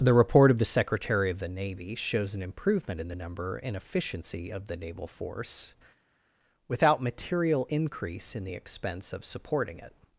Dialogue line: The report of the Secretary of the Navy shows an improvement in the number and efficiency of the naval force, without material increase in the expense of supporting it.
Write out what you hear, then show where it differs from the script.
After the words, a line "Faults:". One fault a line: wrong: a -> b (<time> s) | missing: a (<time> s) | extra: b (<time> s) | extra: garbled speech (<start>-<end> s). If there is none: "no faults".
The report of the Secretary of the Navy shows an improvement in the number and efficiency of the naval force, without material increase in the expense of supporting it.
Faults:
no faults